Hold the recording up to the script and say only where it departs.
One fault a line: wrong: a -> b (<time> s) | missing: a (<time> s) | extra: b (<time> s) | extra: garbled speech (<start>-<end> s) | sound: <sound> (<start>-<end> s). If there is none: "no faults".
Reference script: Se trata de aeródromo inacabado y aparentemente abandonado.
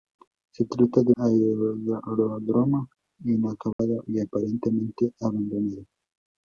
sound: dropout (3.7-3.8 s)